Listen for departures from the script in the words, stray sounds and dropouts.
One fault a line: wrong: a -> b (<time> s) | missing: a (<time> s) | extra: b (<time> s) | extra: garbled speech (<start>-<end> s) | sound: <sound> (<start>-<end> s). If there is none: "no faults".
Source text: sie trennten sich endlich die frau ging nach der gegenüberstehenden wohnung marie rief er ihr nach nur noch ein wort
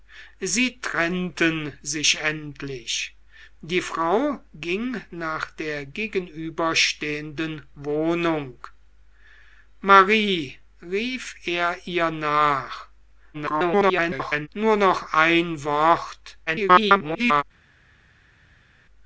extra: garbled speech (13.3-14.5 s)
extra: garbled speech (16.5-17.4 s)